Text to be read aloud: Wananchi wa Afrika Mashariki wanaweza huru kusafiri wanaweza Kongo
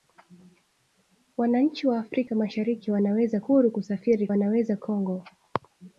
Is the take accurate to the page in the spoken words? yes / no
yes